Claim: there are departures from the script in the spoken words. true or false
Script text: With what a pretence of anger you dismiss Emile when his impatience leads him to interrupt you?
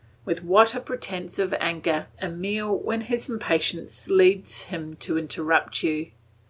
true